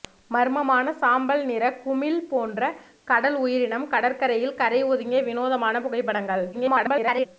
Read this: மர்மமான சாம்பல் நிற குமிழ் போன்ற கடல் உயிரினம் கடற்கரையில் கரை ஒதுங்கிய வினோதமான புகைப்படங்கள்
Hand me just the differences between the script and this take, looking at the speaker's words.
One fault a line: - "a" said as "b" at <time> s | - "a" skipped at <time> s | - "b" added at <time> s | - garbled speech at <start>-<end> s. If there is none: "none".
- garbled speech at 6.5-7.3 s